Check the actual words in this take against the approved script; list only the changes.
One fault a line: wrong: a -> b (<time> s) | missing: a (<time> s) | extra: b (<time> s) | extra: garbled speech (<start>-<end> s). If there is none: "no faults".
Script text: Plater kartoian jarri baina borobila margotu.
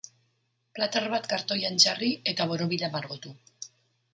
extra: bat (1.1 s)
wrong: baina -> eta (2.3 s)